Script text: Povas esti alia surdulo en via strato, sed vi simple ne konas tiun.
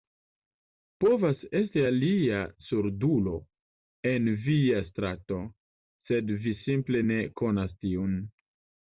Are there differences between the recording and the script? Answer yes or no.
no